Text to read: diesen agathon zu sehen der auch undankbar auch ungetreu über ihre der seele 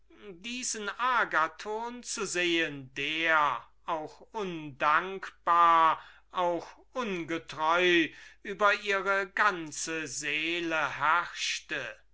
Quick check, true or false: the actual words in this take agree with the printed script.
false